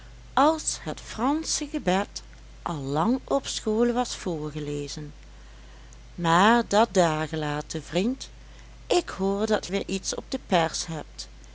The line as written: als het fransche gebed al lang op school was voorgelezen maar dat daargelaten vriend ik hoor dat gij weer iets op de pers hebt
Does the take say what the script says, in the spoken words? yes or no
no